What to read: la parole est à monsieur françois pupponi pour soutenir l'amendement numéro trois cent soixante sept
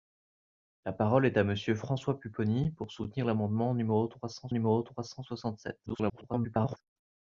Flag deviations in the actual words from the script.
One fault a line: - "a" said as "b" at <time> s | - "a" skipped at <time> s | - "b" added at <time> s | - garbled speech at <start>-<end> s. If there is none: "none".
- "numéro trois cent" added at 4.5 s
- garbled speech at 5.9-6.8 s